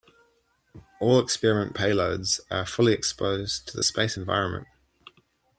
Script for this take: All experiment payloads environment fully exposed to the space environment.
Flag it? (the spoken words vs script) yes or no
yes